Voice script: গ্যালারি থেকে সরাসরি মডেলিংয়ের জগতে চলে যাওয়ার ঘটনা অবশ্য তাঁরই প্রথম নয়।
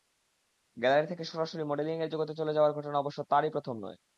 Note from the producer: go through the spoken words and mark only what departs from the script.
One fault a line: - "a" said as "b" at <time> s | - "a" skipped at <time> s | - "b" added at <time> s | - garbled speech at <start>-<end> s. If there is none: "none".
none